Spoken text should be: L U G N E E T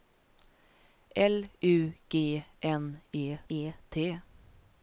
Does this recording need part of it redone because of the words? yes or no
no